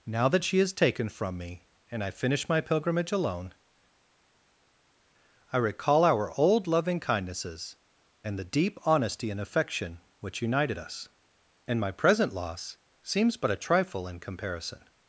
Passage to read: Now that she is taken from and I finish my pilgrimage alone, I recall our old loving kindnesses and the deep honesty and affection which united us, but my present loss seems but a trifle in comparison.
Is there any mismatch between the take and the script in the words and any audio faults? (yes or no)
yes